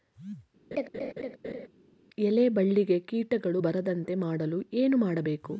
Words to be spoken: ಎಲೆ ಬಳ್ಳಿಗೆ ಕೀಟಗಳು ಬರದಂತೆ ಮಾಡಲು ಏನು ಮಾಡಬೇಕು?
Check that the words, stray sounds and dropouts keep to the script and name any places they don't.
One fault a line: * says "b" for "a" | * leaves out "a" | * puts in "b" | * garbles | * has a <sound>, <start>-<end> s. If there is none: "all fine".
* has a laugh, 0.7-1.7 s